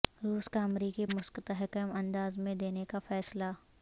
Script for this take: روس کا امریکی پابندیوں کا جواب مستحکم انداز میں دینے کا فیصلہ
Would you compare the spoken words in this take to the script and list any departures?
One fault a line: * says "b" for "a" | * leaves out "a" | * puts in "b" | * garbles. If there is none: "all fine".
* leaves out "پابندیوں کا جواب"